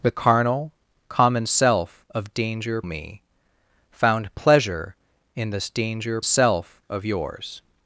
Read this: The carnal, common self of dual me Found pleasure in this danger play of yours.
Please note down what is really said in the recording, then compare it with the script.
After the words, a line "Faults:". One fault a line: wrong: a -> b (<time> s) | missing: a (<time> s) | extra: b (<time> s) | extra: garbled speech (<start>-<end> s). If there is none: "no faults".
The carnal, common self of danger me Found pleasure in this danger self of yours.
Faults:
wrong: dual -> danger (2.3 s)
wrong: play -> self (6.2 s)